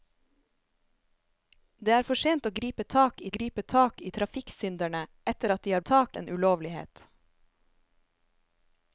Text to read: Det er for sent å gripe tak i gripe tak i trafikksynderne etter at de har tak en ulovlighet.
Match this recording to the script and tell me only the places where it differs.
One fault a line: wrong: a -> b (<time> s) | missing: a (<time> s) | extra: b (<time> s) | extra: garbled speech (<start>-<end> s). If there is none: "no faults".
no faults